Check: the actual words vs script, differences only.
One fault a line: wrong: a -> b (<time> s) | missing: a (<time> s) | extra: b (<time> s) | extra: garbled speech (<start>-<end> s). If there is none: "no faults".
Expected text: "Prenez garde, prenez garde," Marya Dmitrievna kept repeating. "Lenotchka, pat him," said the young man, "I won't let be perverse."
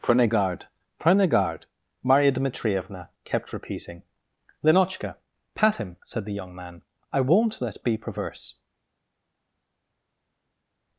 no faults